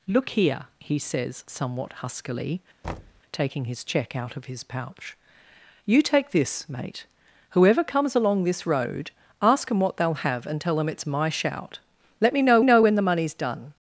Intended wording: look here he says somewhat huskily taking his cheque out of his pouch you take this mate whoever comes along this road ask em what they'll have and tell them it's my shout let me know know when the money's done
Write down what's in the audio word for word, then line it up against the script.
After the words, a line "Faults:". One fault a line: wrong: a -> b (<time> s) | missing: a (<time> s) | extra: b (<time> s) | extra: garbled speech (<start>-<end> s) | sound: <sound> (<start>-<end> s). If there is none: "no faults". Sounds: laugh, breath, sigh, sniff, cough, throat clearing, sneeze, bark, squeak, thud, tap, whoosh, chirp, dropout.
look here he says somewhat huskily taking his cheque out of his pouch you take this mate whoever comes along this road ask em what they'll have and tell them it's my shout let me know know when the money's done
Faults:
sound: thud (2.8-3.2 s)